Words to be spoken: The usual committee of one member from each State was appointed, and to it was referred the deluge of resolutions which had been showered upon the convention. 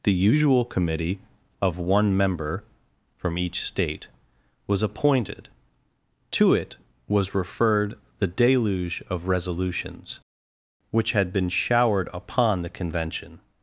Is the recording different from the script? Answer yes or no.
yes